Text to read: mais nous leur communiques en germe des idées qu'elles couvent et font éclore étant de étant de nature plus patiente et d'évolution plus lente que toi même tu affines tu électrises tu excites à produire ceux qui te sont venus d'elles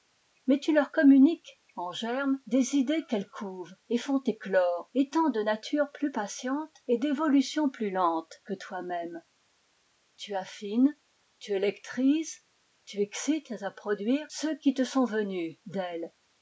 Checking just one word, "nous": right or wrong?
wrong